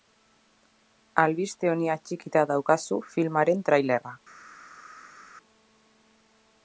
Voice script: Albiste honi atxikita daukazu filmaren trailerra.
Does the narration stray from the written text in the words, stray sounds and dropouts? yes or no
no